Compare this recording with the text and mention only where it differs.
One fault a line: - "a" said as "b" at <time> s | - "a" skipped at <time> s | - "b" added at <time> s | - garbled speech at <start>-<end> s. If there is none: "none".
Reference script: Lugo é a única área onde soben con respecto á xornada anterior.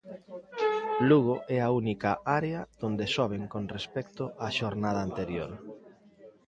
none